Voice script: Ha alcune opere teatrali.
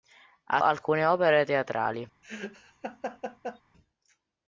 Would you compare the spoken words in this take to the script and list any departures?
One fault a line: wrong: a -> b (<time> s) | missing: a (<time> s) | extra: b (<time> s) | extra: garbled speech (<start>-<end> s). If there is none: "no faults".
no faults